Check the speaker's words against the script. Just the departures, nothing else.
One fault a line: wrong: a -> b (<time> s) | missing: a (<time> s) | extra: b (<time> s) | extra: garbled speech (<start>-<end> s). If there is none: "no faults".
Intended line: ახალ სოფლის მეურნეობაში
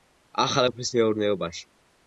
no faults